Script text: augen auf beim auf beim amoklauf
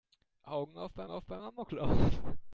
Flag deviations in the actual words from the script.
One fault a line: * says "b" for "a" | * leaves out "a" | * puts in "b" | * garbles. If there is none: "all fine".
all fine